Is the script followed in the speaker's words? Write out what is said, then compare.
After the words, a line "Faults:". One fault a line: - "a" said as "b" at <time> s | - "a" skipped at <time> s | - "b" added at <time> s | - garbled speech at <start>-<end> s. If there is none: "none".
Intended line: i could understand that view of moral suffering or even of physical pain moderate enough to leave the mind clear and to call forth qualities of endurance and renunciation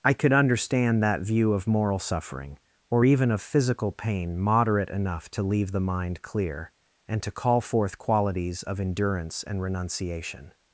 i could understand that view of moral suffering or even of physical pain moderate enough to leave the mind clear and to call forth qualities of endurance and renunciation
Faults:
none